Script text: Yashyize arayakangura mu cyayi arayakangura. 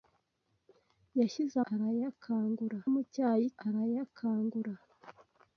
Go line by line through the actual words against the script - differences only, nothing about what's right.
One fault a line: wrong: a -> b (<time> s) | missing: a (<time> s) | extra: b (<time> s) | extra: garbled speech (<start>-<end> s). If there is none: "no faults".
no faults